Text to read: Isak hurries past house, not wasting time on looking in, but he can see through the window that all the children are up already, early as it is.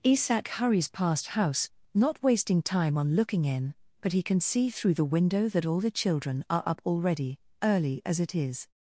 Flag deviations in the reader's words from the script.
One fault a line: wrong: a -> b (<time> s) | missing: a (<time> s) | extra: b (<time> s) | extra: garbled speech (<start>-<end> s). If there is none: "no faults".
no faults